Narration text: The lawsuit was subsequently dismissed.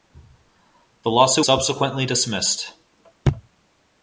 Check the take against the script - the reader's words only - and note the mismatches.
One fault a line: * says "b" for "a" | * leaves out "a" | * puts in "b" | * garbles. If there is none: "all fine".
* leaves out "was"